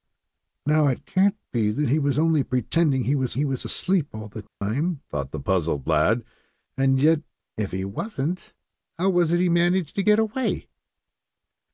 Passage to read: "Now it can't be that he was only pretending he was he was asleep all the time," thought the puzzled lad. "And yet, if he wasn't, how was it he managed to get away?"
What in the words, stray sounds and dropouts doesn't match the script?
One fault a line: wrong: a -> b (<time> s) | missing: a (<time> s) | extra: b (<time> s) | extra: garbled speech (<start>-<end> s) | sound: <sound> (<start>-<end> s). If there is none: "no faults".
sound: dropout (4.5-4.6 s)